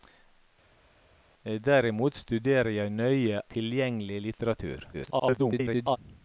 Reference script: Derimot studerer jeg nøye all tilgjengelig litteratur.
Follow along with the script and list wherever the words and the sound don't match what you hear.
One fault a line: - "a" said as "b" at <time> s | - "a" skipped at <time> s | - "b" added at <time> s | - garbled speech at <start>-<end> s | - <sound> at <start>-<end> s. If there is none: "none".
- "all" skipped at 3.4 s
- garbled speech at 4.9-6.0 s